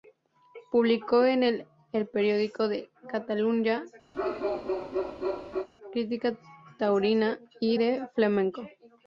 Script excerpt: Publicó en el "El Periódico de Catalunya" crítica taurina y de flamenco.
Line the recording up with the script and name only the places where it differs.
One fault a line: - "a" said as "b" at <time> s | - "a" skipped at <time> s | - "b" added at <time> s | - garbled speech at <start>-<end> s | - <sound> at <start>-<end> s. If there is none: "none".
- bark at 4.1-5.7 s